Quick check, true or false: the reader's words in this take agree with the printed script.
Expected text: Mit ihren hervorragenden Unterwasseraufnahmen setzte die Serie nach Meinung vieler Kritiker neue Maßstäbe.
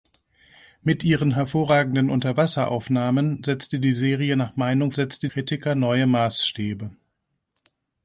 false